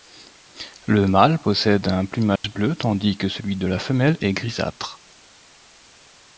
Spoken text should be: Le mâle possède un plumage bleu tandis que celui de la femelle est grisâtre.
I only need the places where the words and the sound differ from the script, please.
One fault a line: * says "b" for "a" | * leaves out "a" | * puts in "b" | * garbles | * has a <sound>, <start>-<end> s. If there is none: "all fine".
* has a dropout, 2.4-2.4 s